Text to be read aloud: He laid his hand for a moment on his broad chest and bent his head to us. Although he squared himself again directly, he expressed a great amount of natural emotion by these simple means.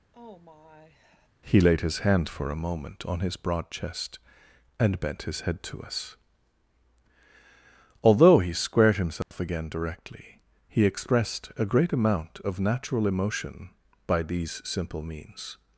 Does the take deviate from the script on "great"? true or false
false